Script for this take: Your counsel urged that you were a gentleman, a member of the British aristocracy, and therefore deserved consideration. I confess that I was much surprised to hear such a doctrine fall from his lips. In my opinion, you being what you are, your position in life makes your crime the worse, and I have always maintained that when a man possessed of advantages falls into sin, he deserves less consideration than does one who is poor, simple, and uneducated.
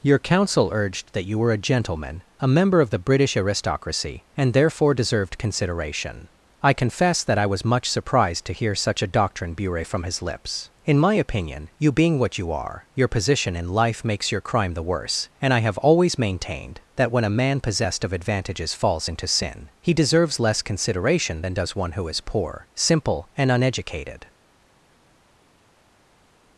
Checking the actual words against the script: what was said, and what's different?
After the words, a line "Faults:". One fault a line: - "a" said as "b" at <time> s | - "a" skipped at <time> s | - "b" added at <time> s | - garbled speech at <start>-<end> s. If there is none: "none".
Your counsel urged that you were a gentleman, a member of the British aristocracy, and therefore deserved consideration. I confess that I was much surprised to hear such a doctrine bure from his lips. In my opinion, you being what you are, your position in life makes your crime the worse, and I have always maintained that when a man possessed of advantages falls into sin, he deserves less consideration than does one who is poor, simple, and uneducated.
Faults:
- "fall" said as "bure" at 9.5 s